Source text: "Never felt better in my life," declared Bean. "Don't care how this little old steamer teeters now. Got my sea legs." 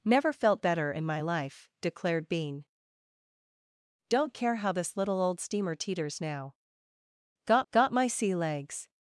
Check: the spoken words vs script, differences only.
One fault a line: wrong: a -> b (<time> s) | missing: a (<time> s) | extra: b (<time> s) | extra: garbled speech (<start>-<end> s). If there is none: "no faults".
extra: got (7.7 s)